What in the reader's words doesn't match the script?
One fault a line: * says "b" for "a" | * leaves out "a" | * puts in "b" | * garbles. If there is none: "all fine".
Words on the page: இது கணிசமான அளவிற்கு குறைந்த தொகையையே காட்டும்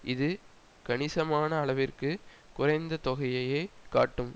all fine